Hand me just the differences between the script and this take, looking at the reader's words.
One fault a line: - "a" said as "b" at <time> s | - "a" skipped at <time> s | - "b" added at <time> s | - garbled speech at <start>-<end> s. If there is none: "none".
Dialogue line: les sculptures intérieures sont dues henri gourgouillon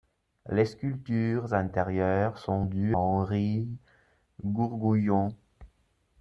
none